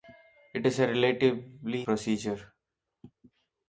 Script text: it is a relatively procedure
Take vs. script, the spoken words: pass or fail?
pass